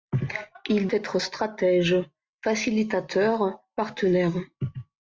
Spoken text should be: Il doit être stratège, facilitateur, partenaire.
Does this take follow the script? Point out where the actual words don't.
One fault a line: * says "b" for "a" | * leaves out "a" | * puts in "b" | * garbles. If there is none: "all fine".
* leaves out "doit"